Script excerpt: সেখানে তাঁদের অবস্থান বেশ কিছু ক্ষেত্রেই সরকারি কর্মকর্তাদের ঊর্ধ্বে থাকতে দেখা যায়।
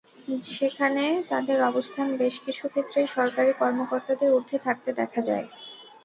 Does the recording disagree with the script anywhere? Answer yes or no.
no